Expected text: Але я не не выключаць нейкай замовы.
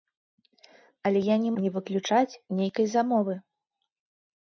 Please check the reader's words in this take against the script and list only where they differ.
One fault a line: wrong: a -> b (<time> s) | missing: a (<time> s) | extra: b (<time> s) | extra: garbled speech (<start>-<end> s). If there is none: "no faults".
no faults